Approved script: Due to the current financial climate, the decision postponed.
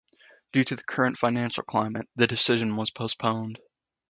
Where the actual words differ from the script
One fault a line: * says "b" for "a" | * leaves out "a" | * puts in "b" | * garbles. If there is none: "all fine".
* puts in "was"